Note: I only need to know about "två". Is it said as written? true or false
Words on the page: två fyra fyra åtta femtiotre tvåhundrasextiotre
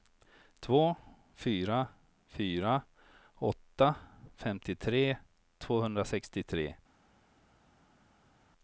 true